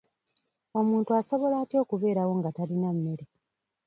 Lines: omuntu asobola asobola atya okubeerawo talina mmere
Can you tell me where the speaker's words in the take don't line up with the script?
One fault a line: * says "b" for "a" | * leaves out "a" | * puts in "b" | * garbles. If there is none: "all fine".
* leaves out "asobola"
* puts in "nga"